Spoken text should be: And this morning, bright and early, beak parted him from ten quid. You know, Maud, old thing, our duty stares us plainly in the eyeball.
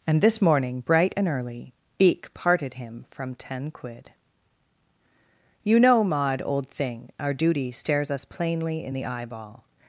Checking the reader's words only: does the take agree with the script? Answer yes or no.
yes